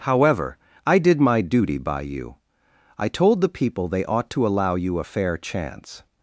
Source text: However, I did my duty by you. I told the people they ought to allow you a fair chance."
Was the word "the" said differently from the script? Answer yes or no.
no